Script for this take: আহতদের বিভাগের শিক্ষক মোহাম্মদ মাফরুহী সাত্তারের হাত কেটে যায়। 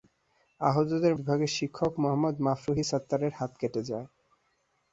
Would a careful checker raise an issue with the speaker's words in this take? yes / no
no